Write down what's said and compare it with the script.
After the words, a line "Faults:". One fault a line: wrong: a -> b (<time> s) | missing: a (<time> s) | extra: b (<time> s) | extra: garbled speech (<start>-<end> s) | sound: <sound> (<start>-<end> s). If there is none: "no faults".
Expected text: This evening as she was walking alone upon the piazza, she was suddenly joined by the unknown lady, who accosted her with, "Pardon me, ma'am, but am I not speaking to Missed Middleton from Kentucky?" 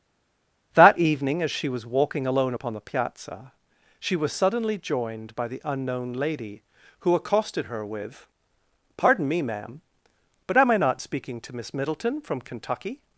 That evening as she was walking alone upon the piazza, she was suddenly joined by the unknown lady, who accosted her with, "Pardon me, ma'am, but am I not speaking to Miss Middleton from Kentucky?"
Faults:
wrong: This -> That (0.7 s)
wrong: Missed -> Miss (11.6 s)